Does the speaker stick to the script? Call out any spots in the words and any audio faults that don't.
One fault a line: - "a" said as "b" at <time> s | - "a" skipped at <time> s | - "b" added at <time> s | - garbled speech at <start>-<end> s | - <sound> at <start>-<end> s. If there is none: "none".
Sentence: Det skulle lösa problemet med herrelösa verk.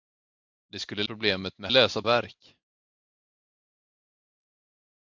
- "lösa" skipped at 1.0 s
- "herrelösa" said as "lösa" at 1.7 s